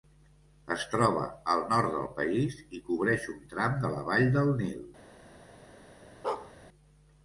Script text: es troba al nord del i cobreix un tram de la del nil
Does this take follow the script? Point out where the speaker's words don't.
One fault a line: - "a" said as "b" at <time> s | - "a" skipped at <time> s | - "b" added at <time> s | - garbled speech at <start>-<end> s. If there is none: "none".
- "país" added at 2.2 s
- "vall" added at 4.1 s